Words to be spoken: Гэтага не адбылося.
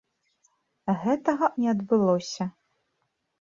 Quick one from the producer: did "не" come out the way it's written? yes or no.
yes